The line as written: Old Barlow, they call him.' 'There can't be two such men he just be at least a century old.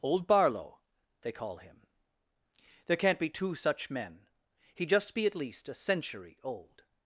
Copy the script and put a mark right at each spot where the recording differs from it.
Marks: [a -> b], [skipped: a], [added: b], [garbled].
Old Barlow, they call him.' 'There can't be two such men he just be at least a century old.